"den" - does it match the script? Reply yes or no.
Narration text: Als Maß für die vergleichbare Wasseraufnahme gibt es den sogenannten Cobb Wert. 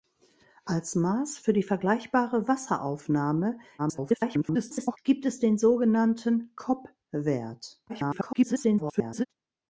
yes